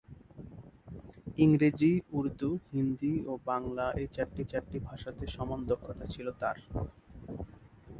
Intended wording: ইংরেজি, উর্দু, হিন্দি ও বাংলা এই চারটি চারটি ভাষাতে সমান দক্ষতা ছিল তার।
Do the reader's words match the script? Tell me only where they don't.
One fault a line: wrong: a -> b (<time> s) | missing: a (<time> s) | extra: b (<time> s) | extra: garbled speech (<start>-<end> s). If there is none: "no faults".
no faults